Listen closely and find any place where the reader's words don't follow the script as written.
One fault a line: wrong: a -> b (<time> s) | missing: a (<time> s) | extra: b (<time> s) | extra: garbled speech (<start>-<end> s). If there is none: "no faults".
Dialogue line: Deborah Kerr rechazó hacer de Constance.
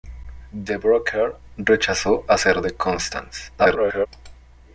extra: garbled speech (3.6-4.1 s)